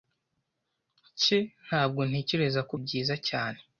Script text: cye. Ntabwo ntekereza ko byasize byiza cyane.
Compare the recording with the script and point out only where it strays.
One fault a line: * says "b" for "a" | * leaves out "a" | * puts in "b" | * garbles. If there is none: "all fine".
* leaves out "byasize"